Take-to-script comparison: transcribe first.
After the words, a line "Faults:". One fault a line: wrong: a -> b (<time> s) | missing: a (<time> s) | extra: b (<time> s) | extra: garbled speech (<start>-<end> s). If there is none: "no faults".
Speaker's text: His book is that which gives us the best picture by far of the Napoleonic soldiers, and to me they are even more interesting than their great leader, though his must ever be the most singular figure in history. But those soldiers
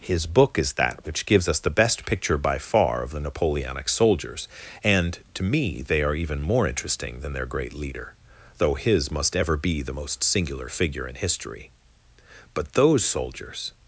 His book is that which gives us the best picture by far of the Napoleonic soldiers, and to me they are even more interesting than their great leader, though his must ever be the most singular figure in history. But those soldiers
Faults:
no faults